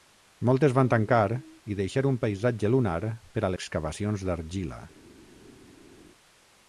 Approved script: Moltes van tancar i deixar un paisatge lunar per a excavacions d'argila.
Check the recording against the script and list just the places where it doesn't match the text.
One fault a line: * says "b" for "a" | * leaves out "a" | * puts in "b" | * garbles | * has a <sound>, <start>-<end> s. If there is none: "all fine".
all fine